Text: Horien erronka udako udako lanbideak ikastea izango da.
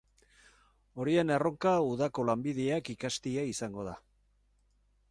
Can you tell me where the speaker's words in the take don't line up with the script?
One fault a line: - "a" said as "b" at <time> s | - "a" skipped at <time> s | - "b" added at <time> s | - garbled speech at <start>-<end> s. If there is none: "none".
- "udako" skipped at 2.3 s